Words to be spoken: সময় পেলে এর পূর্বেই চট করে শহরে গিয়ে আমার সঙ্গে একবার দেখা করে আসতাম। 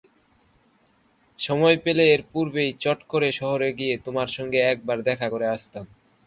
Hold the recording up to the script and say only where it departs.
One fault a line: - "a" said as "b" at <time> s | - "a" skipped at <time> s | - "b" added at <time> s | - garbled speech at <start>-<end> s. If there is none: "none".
- "আমার" said as "তোমার" at 4.1 s